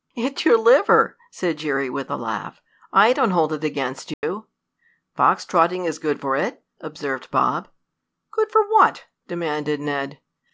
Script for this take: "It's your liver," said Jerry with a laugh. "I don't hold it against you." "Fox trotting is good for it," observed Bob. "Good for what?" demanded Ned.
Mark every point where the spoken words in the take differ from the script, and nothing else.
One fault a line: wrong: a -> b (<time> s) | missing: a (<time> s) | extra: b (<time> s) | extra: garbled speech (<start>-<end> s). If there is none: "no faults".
no faults